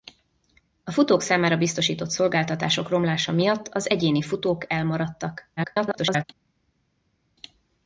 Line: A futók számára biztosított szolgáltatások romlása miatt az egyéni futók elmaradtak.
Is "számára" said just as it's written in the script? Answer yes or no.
yes